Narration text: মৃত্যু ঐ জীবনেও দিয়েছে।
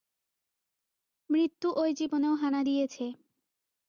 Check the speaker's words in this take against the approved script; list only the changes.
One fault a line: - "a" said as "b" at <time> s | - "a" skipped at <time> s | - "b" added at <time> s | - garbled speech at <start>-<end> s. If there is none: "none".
- "হানা" added at 2.4 s